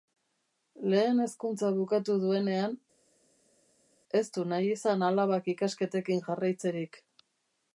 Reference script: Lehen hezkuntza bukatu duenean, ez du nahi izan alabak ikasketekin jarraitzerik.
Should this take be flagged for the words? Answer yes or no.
no